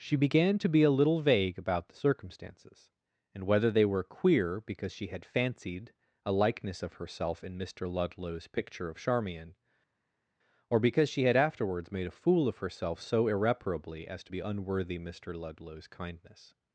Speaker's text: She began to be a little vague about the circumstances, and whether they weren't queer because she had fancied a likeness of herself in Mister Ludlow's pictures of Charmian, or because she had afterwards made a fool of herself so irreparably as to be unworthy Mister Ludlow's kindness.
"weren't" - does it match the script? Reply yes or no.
no